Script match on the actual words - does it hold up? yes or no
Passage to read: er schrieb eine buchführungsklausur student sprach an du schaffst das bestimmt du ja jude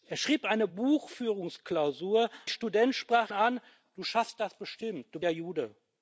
yes